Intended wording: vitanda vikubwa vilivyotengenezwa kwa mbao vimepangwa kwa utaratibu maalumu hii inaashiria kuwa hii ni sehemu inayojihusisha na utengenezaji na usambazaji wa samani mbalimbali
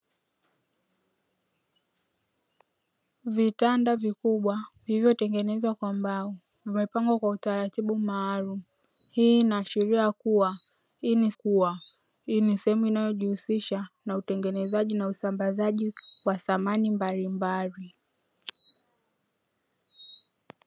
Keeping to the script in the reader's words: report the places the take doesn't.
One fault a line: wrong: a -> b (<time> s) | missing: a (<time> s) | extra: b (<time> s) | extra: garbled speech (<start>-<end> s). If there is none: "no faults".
extra: kuwa hii ni (11.3 s)